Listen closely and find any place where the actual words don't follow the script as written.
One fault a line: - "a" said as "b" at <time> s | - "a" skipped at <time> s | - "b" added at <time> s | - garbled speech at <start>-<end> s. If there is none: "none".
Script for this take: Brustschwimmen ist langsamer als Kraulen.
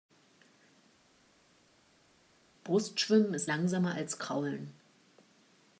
none